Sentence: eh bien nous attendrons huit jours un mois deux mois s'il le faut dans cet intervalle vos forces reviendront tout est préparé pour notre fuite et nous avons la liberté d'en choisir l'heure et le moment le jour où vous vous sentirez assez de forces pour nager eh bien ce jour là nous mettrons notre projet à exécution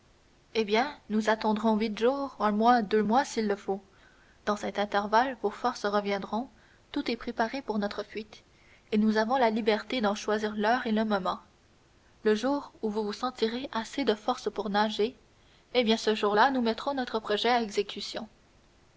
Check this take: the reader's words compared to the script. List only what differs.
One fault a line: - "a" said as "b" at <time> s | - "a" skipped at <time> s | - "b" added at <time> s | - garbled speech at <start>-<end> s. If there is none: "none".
none